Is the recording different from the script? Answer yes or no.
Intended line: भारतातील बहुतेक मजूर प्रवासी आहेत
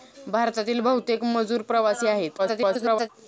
yes